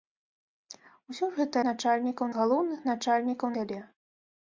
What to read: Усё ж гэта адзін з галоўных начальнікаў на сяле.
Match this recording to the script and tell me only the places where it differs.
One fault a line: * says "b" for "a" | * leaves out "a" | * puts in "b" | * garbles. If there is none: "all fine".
* says "начальнікаў" for "адзін"
* leaves out "на"